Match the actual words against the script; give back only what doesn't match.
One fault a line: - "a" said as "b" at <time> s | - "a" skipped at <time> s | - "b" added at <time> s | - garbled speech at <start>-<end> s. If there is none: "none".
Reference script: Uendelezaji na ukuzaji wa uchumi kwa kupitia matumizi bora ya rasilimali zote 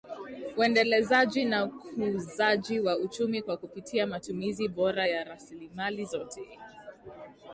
none